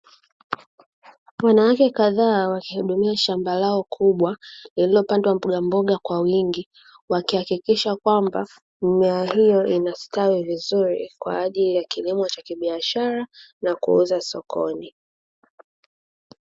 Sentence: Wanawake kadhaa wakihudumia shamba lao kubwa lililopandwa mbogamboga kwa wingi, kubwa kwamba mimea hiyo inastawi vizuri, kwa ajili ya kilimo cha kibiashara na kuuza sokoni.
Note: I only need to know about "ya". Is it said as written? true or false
true